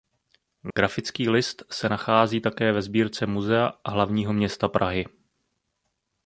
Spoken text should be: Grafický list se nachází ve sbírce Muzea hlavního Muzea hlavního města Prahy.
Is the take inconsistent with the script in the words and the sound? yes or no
yes